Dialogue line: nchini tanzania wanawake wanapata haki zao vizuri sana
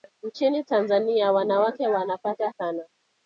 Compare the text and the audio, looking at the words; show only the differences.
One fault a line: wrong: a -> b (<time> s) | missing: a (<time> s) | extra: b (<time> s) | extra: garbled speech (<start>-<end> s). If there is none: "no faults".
missing: haki zao vizuri (2.5 s)